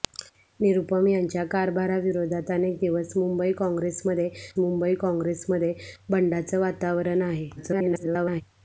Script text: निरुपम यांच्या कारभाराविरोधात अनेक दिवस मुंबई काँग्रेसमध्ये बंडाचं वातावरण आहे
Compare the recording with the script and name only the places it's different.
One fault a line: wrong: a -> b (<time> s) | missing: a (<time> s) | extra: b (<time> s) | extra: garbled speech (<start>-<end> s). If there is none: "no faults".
extra: मुंबई काँग्रेसमध्ये (4.6 s)
extra: garbled speech (7.6-8.4 s)